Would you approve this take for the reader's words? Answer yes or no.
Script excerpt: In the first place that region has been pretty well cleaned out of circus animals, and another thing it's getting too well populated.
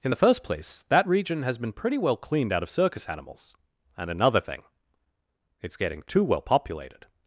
yes